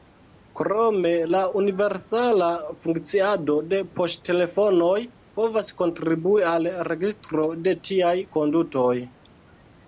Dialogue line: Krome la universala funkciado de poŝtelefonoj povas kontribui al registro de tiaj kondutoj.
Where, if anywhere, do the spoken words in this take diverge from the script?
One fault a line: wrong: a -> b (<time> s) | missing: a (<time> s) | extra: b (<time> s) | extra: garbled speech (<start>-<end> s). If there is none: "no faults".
no faults